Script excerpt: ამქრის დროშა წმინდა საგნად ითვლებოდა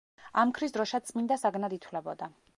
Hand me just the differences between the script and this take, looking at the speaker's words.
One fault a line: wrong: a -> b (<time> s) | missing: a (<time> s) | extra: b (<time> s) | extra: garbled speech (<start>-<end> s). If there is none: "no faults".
no faults